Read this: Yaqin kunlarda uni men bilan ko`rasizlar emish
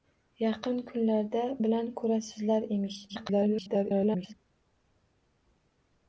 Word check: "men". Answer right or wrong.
wrong